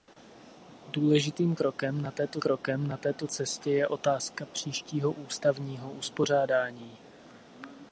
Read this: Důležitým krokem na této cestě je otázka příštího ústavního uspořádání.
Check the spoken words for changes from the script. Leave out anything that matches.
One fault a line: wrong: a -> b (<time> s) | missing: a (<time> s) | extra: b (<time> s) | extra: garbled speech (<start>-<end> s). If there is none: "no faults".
extra: krokem na této (2.4 s)